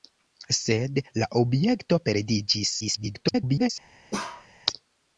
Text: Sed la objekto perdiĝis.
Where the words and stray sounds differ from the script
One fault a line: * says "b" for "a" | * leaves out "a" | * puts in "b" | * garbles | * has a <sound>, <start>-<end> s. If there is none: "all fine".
* garbles
* has a bark, 4.1-4.5 s